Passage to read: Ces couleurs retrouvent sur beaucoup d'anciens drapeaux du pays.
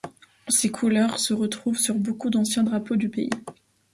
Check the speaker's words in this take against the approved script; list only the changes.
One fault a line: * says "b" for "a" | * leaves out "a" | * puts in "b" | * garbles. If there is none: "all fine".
* puts in "se"